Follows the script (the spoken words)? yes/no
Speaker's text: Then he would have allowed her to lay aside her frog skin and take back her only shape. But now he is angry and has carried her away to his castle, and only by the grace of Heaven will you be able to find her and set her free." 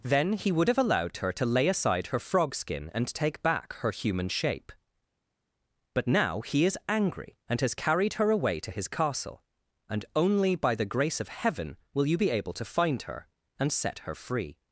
no